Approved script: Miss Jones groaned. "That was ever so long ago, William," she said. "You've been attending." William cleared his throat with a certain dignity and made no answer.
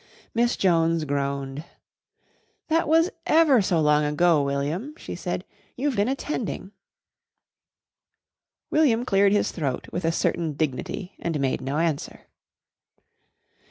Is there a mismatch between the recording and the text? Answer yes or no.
no